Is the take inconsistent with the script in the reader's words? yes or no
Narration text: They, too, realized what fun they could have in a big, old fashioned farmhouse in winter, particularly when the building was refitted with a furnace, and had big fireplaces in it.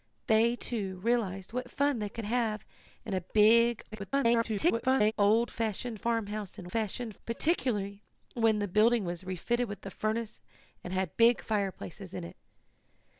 yes